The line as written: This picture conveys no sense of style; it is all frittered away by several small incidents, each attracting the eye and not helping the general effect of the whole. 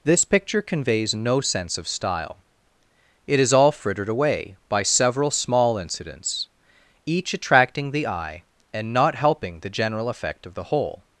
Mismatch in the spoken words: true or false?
false